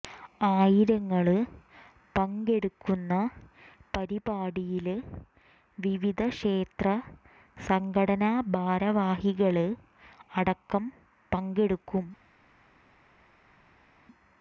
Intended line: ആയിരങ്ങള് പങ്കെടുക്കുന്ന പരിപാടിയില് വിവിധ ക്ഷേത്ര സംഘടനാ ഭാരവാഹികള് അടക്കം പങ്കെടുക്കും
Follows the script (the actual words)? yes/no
yes